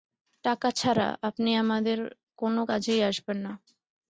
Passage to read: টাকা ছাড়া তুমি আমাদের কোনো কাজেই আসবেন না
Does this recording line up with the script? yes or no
no